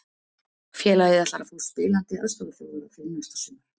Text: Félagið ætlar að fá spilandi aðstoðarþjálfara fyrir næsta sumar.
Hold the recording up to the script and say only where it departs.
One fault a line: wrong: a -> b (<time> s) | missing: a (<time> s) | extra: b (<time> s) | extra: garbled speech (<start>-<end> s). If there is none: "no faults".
no faults